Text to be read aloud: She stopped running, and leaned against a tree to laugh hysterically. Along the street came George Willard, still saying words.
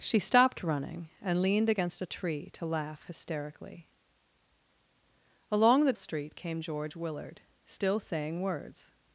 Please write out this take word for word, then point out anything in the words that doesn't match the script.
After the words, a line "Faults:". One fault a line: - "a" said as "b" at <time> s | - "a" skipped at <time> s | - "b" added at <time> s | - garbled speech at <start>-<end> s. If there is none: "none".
She stopped running, and leaned against a tree to laugh hysterically. Along the street came George Willard, still saying words.
Faults:
none